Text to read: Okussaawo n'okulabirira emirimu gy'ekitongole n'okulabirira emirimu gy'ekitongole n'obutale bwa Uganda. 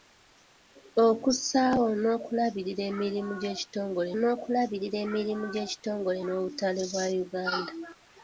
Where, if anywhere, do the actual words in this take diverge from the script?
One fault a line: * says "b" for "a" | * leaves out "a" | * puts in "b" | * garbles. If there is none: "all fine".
all fine